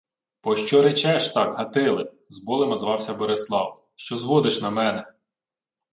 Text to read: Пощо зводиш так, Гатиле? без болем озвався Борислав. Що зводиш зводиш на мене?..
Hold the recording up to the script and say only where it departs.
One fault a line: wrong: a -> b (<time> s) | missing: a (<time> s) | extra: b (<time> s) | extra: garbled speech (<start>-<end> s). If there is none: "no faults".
wrong: зводиш -> речеш (0.8 s)
wrong: без -> з (2.3 s)
missing: зводиш (4.6 s)